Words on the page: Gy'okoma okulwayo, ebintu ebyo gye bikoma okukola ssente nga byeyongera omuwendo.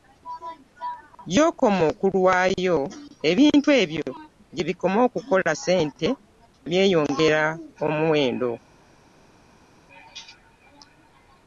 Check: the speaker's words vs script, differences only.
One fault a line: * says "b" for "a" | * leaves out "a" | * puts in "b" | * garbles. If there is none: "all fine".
* leaves out "nga"